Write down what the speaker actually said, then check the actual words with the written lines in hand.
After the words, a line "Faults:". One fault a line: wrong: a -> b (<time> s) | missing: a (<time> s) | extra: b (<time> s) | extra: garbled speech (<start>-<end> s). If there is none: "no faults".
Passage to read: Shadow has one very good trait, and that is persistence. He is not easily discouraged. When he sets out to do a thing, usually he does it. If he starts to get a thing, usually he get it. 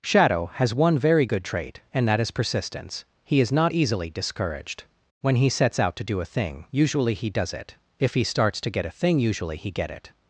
Shadow has one very good trait, and that is persistence. He is not easily discouraged. When he sets out to do a thing, usually he does it. If he starts to get a thing, usually he get it.
Faults:
no faults